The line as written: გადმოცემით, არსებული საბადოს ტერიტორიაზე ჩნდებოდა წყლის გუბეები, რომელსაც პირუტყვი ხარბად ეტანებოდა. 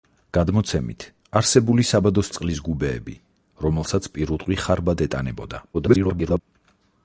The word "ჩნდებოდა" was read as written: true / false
false